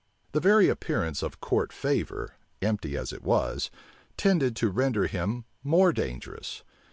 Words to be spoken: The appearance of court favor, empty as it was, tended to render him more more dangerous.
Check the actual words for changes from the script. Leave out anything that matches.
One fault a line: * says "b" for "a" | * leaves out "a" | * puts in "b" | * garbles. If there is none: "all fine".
* puts in "very"
* leaves out "more"